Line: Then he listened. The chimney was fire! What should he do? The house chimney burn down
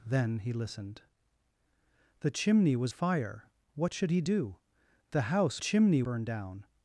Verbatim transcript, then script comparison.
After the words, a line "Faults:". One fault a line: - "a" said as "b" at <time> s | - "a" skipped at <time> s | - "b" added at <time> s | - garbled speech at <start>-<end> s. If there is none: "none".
Then he listened. The chimney was fire! What should he do? The house chimney burn down
Faults:
none